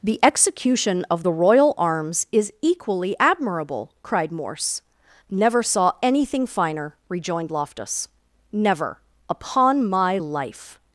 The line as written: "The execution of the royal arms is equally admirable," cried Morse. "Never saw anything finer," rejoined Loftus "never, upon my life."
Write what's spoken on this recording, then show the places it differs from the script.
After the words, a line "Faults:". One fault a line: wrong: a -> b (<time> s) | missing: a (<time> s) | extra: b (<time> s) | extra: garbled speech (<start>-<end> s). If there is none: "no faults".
"The execution of the royal arms is equally admirable," cried Morse. "Never saw anything finer," rejoined Loftus "never, upon my life."
Faults:
no faults